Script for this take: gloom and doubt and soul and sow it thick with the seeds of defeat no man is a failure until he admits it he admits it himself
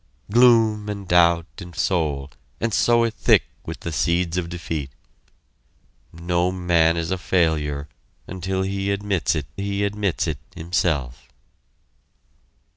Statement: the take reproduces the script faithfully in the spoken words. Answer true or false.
true